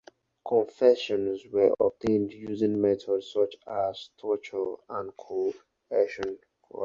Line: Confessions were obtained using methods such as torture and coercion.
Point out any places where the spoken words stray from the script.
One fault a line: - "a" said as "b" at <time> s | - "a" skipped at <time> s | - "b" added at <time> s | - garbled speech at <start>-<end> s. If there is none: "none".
none